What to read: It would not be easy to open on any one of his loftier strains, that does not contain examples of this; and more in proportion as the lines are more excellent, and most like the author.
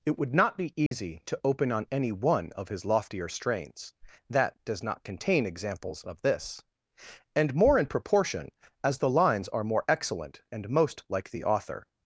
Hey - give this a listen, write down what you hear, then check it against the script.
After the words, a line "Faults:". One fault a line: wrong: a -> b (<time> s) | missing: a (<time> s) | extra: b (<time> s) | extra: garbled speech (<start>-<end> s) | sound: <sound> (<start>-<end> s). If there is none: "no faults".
It would not be easy to open on any one of his loftier strains, that does not contain examples of this; and more in proportion as the lines are more excellent, and most like the author.
Faults:
sound: dropout (0.9-0.9 s)